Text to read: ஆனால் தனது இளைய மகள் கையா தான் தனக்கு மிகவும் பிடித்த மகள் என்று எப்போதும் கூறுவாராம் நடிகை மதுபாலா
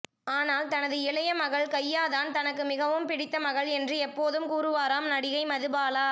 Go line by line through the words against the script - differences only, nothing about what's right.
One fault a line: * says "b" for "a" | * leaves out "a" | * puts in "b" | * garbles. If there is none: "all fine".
all fine